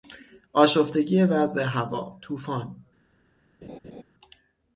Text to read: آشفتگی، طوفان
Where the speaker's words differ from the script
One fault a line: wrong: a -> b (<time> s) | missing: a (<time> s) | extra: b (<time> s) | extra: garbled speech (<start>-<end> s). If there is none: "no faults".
extra: وضع هوا (1.2 s)